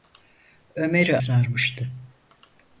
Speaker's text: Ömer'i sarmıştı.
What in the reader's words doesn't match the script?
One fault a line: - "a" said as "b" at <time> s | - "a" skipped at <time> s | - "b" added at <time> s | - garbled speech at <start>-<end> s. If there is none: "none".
none